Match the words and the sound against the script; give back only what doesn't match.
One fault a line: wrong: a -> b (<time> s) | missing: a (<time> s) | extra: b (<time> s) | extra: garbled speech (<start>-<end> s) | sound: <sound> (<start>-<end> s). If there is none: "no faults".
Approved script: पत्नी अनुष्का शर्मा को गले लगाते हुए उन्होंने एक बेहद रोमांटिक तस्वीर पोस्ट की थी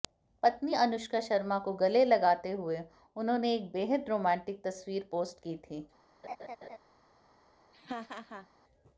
sound: laugh (6.2-6.8 s)
sound: laugh (7.7-8.5 s)